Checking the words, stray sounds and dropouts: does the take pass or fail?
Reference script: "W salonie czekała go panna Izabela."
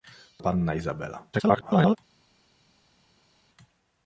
fail